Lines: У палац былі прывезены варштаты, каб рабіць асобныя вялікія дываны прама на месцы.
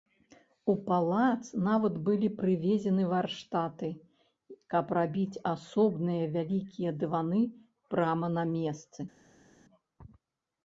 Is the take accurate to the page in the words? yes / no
no